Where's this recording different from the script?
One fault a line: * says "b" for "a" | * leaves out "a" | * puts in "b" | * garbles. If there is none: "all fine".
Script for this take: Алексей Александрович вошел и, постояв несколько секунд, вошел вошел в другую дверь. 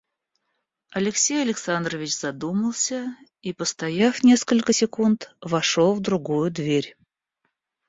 * says "задумался" for "вошел"
* leaves out "вошел"